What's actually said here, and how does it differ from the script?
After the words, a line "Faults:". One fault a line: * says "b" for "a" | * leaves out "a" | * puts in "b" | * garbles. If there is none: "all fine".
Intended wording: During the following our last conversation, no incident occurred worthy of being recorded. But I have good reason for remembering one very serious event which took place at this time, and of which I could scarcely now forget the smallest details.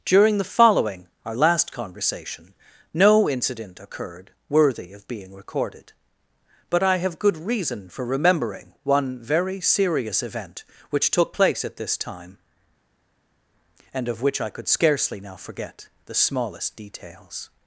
During the following our last conversation, no incident occurred worthy of being recorded. But I have good reason for remembering one very serious event which took place at this time, and of which I could scarcely now forget the smallest details.
Faults:
all fine